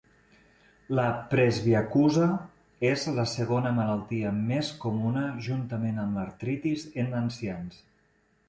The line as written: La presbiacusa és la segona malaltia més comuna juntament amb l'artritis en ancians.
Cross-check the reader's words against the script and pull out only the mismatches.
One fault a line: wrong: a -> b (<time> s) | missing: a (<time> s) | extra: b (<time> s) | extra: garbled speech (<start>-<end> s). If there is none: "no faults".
no faults